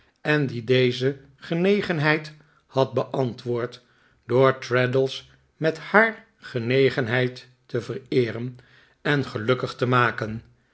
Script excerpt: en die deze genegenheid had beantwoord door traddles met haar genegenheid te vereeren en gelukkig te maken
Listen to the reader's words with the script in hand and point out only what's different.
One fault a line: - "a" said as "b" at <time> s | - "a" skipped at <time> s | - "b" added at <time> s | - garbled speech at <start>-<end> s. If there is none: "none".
none